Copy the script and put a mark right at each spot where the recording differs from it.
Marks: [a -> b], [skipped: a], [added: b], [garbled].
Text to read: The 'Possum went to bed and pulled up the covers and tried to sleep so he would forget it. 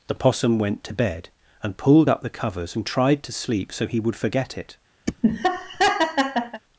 The 'Possum went to bed and pulled up the covers and tried to sleep so he would forget it.